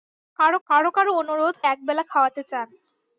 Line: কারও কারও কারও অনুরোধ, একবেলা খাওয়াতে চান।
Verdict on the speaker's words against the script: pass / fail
pass